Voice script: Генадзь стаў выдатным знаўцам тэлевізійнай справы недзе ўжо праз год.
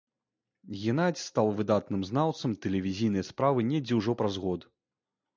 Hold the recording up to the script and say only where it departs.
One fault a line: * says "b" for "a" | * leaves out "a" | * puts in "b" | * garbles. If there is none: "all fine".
all fine